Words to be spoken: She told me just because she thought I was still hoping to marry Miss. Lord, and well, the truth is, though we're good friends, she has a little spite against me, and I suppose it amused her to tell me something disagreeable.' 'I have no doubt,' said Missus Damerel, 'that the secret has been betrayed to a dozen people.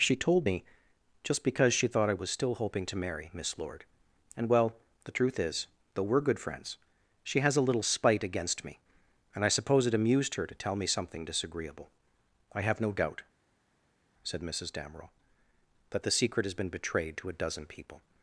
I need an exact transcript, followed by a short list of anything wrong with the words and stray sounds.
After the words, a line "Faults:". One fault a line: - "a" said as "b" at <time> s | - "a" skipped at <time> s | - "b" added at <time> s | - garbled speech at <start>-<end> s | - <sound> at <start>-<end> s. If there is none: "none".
She told me just because she thought I was still hoping to marry Miss. Lord, and well, the truth is, though we're good friends, she has a little spite against me, and I suppose it amused her to tell me something disagreeable.' 'I have no doubt,' said Missus Damerel, 'that the secret has been betrayed to a dozen people.
Faults:
none